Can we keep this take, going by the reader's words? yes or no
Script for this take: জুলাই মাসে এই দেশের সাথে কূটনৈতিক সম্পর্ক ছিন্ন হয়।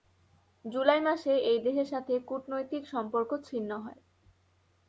yes